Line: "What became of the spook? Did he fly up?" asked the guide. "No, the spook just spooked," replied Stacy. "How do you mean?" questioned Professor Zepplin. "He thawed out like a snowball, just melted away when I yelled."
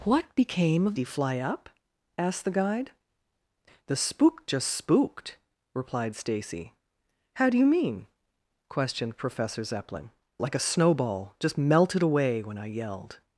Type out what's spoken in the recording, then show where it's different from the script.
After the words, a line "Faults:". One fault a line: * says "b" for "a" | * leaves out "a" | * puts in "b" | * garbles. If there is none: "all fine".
"What became of he fly up?" asked the guide. "The spook just spooked," replied Stacy. "How do you mean?" questioned Professor Zepplin. "Like a snowball, just melted away when I yelled."
Faults:
* leaves out "the spook Did"
* leaves out "No"
* leaves out "He thawed out"